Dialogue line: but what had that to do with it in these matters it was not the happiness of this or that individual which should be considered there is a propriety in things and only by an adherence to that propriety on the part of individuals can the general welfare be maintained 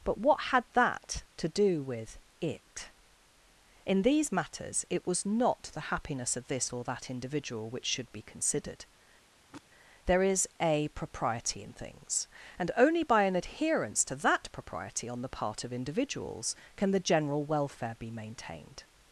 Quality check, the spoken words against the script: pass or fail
pass